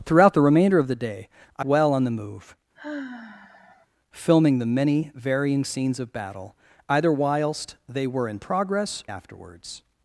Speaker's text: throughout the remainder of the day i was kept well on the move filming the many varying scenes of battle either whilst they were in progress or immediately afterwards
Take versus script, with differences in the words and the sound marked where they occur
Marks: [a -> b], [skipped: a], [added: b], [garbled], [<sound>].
throughout the remainder of the day i [skipped: was kept] well on the move [sigh] filming the many varying scenes of battle either whilst they were in progress [skipped: or immediately] afterwards